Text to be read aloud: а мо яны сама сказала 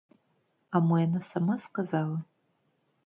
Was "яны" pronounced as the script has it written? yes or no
no